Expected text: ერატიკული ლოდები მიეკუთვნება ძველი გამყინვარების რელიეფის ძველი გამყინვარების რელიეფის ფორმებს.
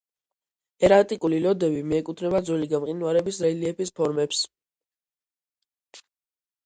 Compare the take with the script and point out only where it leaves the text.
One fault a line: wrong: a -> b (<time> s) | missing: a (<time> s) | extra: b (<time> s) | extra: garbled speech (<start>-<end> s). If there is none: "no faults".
missing: ძველი გამყინვარების რელიეფის (3.9 s)